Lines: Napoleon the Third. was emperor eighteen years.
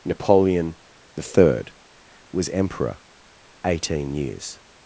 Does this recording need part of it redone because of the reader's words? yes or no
no